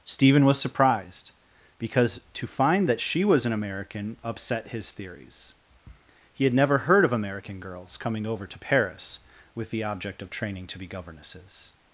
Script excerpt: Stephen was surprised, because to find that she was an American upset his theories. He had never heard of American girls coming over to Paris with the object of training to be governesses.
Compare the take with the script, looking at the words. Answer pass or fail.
pass